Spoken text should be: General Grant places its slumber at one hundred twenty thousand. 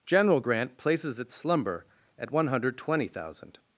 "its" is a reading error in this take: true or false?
false